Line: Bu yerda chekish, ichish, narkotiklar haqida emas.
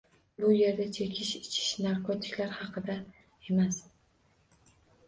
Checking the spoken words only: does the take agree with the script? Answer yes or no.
yes